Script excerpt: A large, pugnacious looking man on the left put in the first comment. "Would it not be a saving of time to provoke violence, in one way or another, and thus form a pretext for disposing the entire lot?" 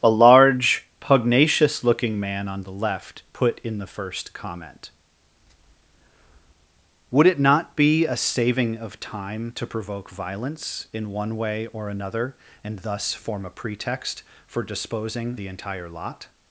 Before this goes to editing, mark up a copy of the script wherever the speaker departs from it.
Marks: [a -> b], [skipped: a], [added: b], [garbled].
A large, pugnacious looking man on the left put in the first comment. "Would it not be a saving of time to provoke violence, in one way or another, and thus form a pretext for disposing the entire lot?"